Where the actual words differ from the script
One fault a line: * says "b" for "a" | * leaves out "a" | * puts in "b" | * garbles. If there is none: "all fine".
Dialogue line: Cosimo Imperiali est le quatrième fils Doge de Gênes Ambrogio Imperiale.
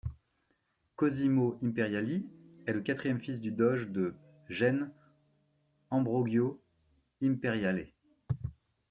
* puts in "du"